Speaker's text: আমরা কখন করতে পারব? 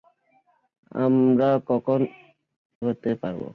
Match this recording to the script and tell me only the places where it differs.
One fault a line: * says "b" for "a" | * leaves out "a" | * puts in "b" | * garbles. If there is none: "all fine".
all fine